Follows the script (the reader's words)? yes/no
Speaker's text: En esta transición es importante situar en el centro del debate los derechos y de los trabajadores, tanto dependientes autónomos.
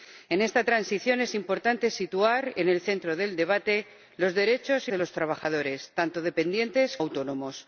yes